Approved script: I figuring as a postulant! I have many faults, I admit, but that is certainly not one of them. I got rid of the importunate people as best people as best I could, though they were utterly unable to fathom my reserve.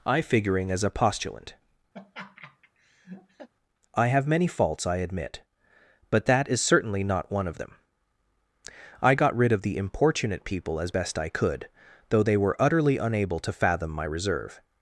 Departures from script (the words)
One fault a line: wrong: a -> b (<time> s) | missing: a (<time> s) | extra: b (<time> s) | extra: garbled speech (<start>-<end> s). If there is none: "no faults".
missing: people as best (11.2 s)